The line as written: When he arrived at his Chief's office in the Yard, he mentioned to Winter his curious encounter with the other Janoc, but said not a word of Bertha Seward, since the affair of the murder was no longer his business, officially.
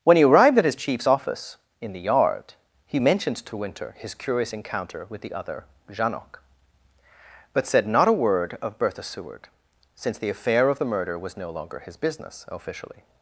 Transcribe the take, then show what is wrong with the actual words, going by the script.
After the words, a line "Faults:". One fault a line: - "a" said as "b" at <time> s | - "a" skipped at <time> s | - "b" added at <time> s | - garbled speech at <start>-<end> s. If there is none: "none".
When he arrived at his Chief's office in the Yard, he mentioned to Winter his curious encounter with the other Janoc, but said not a word of Bertha Seward, since the affair of the murder was no longer his business, officially.
Faults:
none